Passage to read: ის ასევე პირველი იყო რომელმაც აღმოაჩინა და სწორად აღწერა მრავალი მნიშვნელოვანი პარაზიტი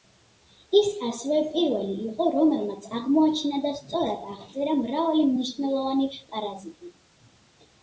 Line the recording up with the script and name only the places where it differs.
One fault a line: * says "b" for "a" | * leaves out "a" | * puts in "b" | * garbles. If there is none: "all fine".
all fine